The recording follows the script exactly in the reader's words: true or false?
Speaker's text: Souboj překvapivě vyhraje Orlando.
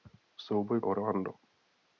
false